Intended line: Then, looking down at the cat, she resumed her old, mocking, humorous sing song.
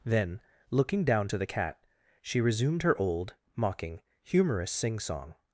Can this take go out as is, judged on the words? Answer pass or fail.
fail